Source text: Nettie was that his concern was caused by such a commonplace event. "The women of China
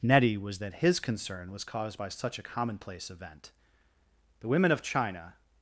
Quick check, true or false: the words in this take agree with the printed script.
true